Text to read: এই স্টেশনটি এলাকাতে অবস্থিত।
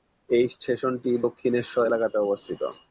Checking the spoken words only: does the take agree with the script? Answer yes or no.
no